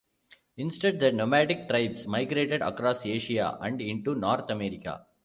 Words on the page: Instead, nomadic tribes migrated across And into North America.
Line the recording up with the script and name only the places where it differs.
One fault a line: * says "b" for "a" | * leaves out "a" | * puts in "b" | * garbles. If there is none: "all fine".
* puts in "the"
* puts in "Asia"